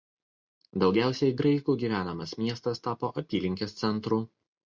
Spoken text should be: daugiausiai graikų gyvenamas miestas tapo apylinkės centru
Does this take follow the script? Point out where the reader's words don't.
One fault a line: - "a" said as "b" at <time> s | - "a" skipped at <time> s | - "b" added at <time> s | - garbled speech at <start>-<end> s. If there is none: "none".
none